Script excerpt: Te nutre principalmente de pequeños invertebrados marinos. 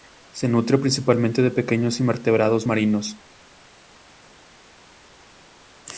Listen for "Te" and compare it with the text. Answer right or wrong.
wrong